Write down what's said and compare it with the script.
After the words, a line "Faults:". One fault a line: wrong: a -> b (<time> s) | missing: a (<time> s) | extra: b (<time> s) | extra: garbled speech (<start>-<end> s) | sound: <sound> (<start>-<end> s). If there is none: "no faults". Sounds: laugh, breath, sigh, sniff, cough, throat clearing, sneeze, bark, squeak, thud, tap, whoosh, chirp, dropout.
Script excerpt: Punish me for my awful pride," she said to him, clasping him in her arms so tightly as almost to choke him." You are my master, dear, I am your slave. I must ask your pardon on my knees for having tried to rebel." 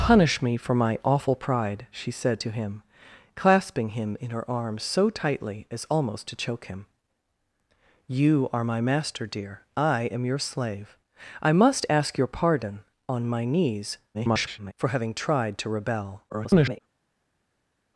Punish me for my awful pride," she said to him, clasping him in her arms so tightly as almost to choke him." You are my master, dear, I am your slave. I must ask your pardon on my knees [garbled] for having tried to rebel." [garbled]
Faults:
extra: garbled speech (14.1-14.7 s)
extra: garbled speech (16.3-16.8 s)